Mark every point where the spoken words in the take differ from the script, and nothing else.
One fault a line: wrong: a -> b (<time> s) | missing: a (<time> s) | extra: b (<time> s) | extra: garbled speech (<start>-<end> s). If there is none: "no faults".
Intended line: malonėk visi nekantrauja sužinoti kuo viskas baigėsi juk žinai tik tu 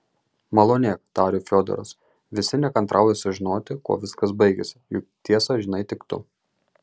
extra: tarė fiodoras (1.2 s)
extra: tiesą (5.3 s)